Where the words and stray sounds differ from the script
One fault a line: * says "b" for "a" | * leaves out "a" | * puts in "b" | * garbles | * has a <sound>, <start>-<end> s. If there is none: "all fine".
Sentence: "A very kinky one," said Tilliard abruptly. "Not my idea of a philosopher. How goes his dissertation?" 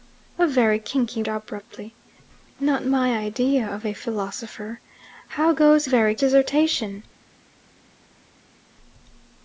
* leaves out "one said Tilliard"
* says "very" for "his"